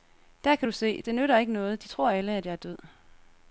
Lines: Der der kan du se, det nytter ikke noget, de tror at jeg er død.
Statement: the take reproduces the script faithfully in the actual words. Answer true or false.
false